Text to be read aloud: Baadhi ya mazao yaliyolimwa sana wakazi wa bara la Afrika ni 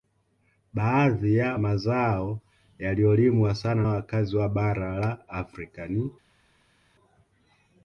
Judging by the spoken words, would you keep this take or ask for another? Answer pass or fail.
pass